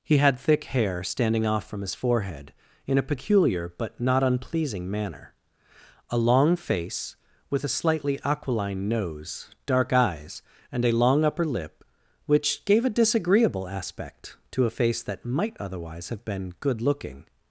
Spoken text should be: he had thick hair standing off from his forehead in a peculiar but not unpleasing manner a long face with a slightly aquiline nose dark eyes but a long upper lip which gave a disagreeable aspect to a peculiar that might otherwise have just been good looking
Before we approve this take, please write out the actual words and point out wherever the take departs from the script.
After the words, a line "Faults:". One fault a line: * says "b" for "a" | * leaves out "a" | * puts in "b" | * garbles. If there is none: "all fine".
he had thick hair standing off from his forehead in a peculiar but not unpleasing manner a long face with a slightly aquiline nose dark eyes and a long upper lip which gave a disagreeable aspect to a face that might otherwise have been good looking
Faults:
* says "and" for "but"
* says "face" for "peculiar"
* leaves out "just"